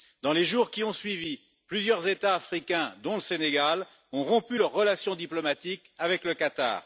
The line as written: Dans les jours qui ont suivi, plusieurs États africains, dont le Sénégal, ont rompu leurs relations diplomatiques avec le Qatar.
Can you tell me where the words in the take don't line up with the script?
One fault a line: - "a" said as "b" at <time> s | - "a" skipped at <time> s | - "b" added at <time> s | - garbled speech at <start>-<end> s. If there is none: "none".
none